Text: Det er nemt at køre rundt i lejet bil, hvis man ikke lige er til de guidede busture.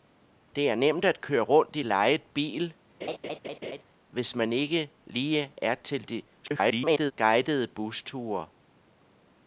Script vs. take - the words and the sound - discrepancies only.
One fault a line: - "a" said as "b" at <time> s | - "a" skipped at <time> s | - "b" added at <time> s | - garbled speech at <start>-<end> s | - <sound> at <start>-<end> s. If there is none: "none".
- laugh at 3.0-3.8 s
- garbled speech at 6.4-7.1 s